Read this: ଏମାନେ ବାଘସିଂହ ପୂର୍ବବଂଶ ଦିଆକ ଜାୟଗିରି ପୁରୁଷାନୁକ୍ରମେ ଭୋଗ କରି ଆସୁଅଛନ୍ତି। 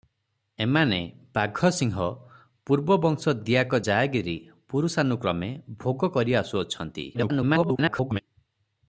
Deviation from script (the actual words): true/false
true